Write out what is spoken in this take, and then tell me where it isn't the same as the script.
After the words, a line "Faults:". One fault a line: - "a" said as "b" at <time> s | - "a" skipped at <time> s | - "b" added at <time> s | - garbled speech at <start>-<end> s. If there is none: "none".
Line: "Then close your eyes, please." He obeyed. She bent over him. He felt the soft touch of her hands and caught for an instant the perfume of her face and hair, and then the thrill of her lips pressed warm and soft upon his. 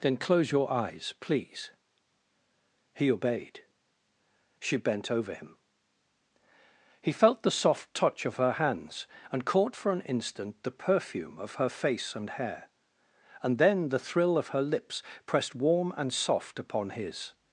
"Then close your eyes, please." He obeyed. She bent over him. He felt the soft touch of her hands and caught for an instant the perfume of her face and hair, and then the thrill of her lips pressed warm and soft upon his.
Faults:
none